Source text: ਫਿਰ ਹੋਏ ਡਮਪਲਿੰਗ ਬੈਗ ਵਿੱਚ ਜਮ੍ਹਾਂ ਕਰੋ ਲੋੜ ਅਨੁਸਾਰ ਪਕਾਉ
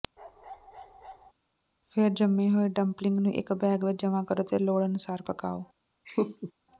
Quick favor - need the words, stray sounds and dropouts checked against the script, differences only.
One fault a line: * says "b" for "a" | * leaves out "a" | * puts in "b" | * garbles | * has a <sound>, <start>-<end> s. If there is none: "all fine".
* has a bark, 0.2-1.3 s
* puts in "ਜੰਮੇ"
* puts in "ਨੂੰ ਇੱਕ"
* puts in "ਅਤੇ"
* has a laugh, 6.0-6.5 s